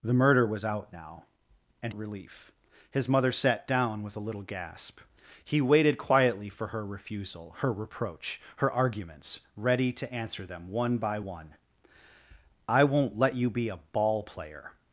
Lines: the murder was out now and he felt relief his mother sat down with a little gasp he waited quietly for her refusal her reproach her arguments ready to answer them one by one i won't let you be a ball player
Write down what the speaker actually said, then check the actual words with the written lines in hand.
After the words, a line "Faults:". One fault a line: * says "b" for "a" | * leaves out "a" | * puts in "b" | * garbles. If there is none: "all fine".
the murder was out now and relief his mother sat down with a little gasp he waited quietly for her refusal her reproach her arguments ready to answer them one by one i won't let you be a ball player
Faults:
* leaves out "he felt"